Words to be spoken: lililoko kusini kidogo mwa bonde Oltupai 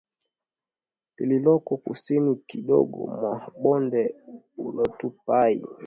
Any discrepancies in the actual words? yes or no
no